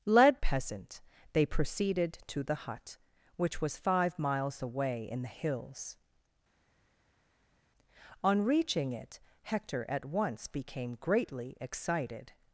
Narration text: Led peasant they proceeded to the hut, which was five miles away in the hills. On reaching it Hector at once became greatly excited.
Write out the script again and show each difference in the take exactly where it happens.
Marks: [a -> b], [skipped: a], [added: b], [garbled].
Led peasant they proceeded to the hut, which was five miles away in the hills. On reaching it Hector at once became greatly excited.